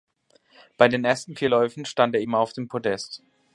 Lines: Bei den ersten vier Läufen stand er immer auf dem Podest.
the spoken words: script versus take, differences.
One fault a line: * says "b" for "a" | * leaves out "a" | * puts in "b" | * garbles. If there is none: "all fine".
all fine